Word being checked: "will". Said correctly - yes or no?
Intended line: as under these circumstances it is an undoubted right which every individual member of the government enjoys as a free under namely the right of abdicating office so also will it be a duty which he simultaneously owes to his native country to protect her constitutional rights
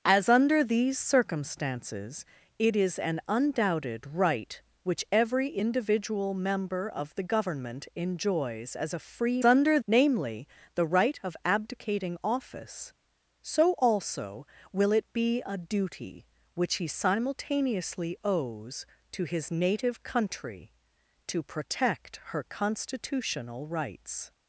yes